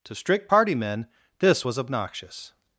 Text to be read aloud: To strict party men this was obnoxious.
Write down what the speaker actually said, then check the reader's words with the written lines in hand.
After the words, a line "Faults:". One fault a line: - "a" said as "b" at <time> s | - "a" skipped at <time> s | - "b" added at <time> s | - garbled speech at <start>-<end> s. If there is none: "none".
To strict party men this was obnoxious.
Faults:
none